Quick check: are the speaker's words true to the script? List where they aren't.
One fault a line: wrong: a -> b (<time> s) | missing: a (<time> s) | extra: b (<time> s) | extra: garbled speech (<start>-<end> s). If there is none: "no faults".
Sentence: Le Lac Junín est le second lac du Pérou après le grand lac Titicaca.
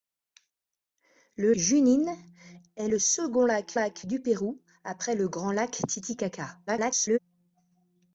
missing: Lac (1.5 s)
extra: lac (3.7 s)
extra: garbled speech (6.7-7.2 s)